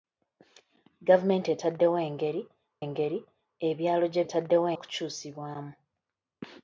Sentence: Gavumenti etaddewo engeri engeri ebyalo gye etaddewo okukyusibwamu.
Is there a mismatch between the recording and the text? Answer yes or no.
no